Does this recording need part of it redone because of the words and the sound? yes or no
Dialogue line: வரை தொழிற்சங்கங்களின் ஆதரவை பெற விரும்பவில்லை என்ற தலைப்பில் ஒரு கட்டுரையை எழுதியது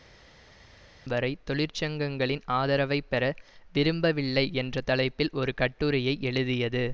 no